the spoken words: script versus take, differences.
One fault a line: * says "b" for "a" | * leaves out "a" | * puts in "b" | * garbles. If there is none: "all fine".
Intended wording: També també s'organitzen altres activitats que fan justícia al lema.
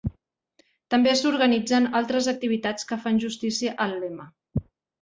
* leaves out "també"